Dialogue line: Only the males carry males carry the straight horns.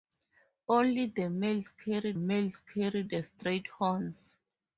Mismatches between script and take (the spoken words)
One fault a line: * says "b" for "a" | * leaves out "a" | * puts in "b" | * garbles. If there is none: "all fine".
all fine